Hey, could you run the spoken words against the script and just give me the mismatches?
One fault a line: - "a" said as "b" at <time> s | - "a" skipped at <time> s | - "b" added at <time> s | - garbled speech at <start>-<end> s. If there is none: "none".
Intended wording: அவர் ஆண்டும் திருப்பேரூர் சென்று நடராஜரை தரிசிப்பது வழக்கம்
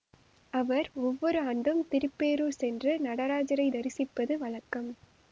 - "ஒவ்வொரு" added at 1.0 s